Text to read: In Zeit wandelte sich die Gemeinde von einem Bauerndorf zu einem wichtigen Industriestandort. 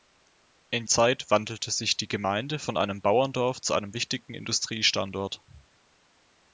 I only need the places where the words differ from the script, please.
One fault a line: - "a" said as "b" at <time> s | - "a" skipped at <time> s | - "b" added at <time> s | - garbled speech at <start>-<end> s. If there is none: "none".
none